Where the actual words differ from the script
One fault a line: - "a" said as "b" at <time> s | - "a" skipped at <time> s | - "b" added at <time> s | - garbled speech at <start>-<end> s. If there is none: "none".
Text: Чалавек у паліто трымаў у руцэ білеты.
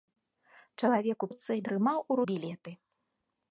- "паліто" said as "руцэ" at 1.3 s
- "руцэ" skipped at 2.2 s